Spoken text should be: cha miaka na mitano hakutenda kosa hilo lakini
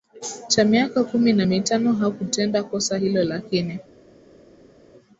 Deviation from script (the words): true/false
true